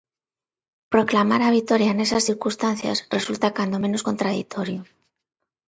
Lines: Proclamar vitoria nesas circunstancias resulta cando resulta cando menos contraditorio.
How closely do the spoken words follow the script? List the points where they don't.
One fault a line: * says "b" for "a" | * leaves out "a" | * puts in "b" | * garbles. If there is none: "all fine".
* puts in "a"
* leaves out "resulta cando"